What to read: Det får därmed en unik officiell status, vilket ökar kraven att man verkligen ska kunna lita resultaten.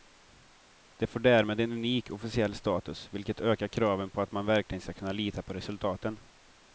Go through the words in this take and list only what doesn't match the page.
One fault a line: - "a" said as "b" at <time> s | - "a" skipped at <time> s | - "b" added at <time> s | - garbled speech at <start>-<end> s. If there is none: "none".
- "på" added at 4.1 s
- "på" added at 5.4 s